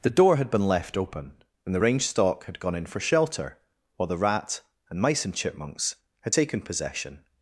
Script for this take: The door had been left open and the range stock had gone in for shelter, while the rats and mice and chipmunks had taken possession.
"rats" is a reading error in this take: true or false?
true